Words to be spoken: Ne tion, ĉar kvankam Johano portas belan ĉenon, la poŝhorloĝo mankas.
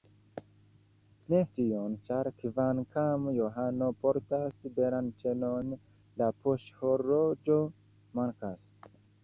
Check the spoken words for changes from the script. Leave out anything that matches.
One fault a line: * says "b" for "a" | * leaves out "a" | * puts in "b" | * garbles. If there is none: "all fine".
all fine